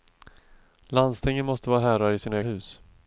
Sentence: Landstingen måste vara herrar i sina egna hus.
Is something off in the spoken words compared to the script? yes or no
yes